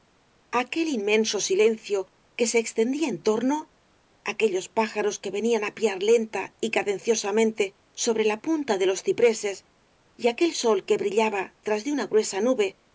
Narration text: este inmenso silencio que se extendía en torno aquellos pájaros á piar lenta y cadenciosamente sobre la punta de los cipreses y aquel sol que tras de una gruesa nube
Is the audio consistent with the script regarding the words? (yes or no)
no